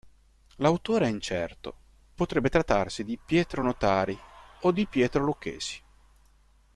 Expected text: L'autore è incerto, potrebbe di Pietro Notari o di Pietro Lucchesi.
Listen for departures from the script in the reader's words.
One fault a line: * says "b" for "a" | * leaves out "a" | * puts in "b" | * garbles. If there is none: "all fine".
* puts in "trattarsi"